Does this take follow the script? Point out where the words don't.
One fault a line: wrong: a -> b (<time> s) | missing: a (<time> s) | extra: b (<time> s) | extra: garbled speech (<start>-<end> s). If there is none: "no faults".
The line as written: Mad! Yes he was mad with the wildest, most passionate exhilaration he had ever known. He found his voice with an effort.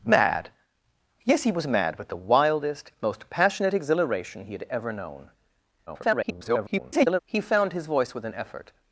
extra: garbled speech (5.9-7.2 s)